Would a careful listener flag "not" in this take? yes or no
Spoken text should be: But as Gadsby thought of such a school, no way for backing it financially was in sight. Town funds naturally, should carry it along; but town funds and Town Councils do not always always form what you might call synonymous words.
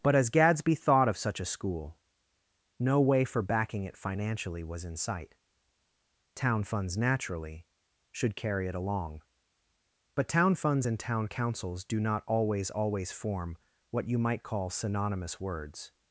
no